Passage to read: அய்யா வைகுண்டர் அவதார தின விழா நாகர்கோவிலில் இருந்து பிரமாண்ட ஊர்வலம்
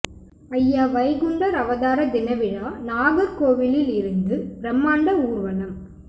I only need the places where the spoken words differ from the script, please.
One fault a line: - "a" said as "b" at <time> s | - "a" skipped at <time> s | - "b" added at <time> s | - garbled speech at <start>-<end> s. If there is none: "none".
none